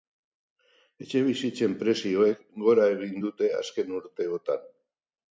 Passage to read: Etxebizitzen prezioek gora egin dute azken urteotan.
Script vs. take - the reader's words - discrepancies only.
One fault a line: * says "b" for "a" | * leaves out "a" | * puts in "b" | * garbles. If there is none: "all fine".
all fine